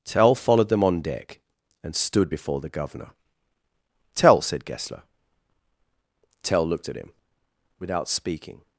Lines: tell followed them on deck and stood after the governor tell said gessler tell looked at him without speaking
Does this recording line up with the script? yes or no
no